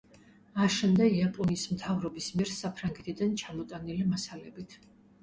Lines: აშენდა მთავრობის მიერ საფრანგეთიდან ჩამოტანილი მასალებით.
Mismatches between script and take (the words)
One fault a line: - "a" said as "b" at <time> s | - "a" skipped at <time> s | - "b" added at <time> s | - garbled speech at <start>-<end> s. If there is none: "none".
- "იაპონიის" added at 1.2 s